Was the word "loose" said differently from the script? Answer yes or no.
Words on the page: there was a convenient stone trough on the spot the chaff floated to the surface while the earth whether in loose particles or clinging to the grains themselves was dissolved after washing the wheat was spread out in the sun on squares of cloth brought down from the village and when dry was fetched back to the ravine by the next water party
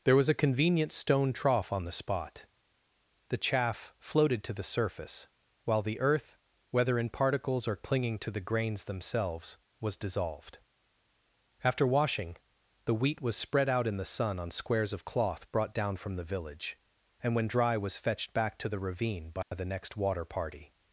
yes